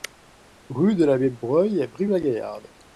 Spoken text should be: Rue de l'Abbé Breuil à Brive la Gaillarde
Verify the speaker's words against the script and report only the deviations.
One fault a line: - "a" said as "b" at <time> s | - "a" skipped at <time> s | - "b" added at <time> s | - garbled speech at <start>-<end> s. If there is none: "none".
none